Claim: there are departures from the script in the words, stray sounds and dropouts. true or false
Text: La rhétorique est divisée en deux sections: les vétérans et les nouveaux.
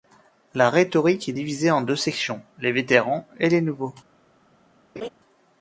true